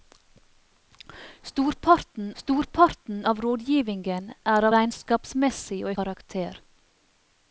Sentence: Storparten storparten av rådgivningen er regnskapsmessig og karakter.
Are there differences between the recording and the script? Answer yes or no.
no